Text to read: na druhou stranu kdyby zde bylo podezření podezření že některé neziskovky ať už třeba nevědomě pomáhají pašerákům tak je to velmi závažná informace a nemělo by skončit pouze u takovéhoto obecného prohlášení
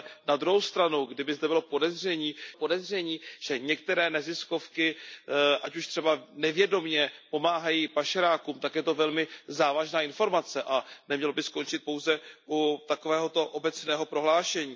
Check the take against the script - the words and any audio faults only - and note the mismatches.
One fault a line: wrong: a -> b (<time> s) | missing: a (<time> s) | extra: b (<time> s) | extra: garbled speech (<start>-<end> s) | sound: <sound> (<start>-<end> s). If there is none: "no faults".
no faults